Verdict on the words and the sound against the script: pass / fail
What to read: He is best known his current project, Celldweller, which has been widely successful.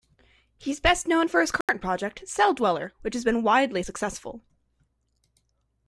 fail